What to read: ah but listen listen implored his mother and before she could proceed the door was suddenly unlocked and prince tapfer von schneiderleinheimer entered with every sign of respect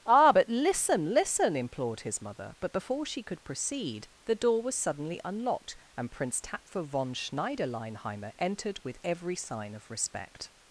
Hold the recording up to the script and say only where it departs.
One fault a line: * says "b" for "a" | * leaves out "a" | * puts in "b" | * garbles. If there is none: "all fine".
* says "but" for "and"